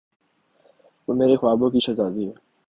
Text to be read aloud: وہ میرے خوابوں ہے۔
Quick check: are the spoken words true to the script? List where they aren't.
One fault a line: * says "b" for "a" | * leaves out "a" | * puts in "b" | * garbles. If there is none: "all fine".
* puts in "کی شہزادی"